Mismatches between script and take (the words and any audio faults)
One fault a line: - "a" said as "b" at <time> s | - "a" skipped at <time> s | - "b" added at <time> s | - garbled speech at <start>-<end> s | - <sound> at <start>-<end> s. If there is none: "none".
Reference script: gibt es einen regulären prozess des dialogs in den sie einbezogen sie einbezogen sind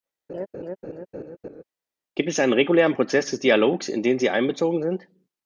- laugh at 0.3-1.6 s
- "sie einbezogen" skipped at 4.8 s